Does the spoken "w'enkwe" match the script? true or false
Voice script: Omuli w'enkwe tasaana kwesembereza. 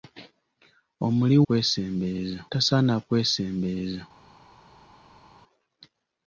false